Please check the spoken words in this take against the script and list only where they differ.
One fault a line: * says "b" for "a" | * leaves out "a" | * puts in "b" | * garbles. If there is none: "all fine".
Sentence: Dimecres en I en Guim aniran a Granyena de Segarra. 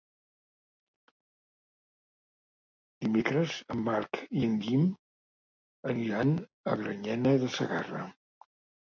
* puts in "Marc"